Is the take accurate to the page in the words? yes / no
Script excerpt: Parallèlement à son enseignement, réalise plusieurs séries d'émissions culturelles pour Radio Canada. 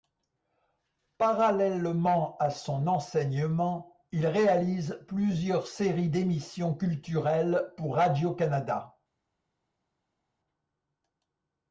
no